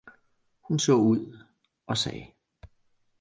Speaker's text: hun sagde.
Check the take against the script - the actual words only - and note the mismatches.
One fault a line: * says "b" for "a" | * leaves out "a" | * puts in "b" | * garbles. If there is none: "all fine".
* puts in "så ud og"